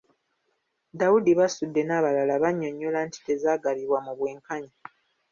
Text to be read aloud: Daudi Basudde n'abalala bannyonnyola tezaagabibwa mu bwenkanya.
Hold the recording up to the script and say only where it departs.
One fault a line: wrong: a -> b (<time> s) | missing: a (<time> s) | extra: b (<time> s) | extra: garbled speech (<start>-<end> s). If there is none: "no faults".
extra: nti (3.1 s)